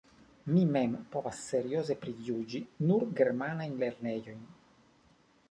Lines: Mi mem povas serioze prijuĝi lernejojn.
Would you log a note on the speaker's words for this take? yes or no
yes